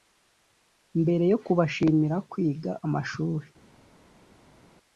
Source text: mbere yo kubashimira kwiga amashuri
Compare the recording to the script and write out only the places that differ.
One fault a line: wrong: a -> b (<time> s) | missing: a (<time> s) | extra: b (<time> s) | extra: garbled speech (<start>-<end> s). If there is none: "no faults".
no faults